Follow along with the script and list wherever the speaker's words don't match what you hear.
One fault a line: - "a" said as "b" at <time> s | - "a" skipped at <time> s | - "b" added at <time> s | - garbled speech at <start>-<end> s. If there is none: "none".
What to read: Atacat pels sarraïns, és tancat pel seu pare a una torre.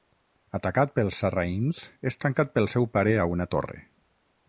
none